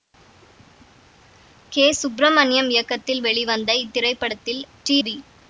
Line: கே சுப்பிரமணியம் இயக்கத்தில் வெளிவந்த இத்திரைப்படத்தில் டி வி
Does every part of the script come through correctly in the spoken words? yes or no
yes